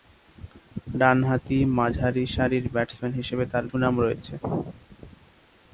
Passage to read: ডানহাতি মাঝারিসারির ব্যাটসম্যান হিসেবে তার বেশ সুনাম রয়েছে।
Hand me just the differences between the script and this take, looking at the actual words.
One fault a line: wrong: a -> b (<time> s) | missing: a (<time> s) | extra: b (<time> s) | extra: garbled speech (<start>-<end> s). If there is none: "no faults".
missing: বেশ (3.6 s)